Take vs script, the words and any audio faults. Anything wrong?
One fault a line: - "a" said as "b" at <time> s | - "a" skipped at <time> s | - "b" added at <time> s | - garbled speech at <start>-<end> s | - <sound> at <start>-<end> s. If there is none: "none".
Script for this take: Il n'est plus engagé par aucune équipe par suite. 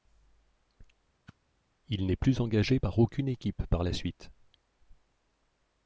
- whoosh at 1.3-1.4 s
- "la" added at 3.8 s